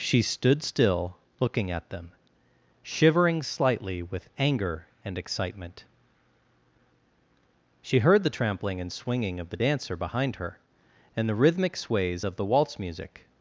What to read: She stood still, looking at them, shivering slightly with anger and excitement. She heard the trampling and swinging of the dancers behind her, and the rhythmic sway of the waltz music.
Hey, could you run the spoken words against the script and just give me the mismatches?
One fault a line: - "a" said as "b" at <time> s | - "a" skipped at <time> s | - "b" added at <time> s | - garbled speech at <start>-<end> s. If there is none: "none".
- "dancers" said as "dancer" at 9.5 s
- "sway" said as "sways" at 11.7 s